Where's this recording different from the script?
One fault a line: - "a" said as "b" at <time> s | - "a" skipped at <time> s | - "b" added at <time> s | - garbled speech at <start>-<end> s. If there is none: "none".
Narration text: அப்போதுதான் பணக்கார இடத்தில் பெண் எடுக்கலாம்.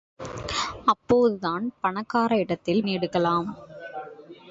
- "பெண்" skipped at 2.8 s